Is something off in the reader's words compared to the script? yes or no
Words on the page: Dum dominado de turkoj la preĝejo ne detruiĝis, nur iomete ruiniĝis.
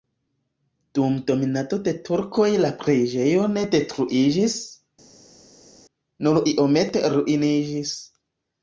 no